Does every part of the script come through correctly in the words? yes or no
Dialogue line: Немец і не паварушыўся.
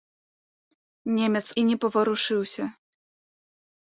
yes